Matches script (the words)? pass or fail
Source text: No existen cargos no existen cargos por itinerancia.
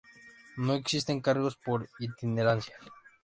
fail